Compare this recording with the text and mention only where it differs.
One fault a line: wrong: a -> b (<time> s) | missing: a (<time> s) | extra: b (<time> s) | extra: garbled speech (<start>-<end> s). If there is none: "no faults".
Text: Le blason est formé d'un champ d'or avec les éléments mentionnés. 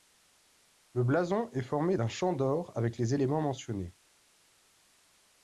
no faults